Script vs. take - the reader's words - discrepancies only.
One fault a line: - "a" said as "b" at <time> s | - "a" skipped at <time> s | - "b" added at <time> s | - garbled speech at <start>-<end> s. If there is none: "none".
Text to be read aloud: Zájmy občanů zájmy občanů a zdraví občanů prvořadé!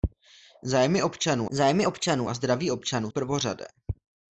none